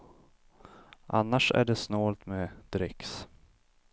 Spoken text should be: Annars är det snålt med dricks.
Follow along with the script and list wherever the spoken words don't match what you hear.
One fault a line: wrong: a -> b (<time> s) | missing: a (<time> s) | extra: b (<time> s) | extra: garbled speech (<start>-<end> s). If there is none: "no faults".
no faults